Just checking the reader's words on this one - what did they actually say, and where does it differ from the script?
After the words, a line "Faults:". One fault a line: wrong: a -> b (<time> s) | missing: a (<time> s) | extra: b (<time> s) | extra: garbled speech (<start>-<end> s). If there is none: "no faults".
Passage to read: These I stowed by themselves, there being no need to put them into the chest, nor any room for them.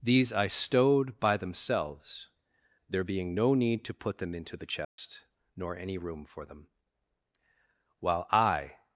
These I stowed by themselves, there being no need to put them into the chest, nor any room for them. While I
Faults:
extra: While I (8.0 s)